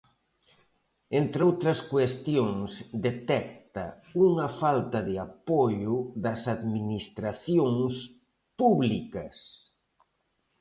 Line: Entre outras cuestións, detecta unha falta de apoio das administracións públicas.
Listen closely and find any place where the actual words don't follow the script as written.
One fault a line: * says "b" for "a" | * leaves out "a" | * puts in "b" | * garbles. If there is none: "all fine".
all fine